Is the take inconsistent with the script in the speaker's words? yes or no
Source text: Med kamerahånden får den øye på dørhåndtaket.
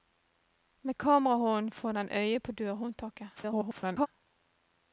yes